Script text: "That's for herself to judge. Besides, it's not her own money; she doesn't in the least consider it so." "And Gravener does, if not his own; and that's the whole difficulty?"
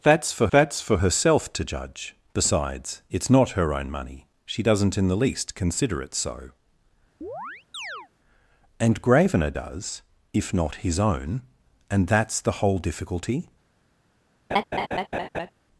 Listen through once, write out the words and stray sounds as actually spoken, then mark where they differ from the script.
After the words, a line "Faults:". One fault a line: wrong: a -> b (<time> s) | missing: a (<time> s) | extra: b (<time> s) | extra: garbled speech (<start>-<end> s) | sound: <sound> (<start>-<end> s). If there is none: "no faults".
"That's for that's for herself to judge. Besides, it's not her own money; she doesn't in the least consider it so." "And Gravener does, if not his own; and that's the whole difficulty?"
Faults:
extra: that's for (0.5 s)
sound: chirp (7.2-8.1 s)
sound: laugh (14.5-15.5 s)